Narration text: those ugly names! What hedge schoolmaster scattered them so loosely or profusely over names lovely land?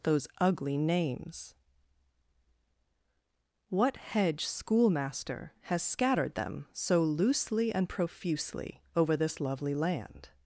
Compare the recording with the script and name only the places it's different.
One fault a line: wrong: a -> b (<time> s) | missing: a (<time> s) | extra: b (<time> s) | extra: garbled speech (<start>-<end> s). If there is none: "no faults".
extra: has (5.6 s)
wrong: or -> and (7.7 s)
wrong: names -> this (9.2 s)